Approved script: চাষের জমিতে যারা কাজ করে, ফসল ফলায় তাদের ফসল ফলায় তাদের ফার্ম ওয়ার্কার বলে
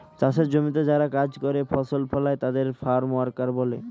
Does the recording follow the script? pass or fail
fail